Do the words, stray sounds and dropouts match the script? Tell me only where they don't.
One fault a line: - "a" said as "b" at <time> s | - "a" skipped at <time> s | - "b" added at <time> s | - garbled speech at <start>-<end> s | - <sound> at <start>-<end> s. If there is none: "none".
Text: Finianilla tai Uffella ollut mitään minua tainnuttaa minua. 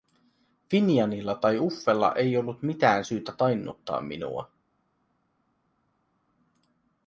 - "ei" added at 2.1 s
- "minua" said as "syytä" at 3.0 s